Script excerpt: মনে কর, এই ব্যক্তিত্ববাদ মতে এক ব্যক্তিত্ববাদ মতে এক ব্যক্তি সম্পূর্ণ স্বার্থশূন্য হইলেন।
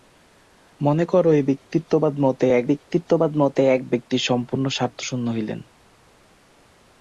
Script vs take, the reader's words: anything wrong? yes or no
no